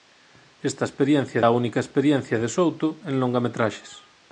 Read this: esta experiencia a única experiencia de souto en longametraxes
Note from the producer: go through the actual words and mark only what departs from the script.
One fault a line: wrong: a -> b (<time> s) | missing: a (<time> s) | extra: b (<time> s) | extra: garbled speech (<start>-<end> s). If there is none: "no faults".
no faults